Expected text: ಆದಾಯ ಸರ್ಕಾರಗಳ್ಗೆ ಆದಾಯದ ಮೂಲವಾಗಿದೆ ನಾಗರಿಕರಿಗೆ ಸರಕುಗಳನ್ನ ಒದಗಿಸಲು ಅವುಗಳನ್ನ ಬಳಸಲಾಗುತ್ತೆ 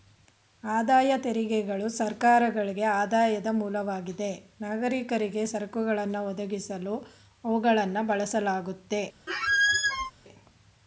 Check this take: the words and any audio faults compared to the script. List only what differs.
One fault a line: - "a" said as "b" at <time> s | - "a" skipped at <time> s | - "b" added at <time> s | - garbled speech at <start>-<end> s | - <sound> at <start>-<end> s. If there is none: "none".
- "ತೆರಿಗೆಗಳು" added at 1.2 s
- squeak at 9.3-10.1 s